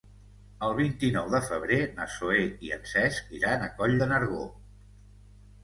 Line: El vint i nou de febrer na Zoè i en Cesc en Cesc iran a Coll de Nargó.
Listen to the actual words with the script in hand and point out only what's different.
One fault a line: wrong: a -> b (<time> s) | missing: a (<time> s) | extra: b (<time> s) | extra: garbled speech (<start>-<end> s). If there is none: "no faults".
missing: en Cesc (3.4 s)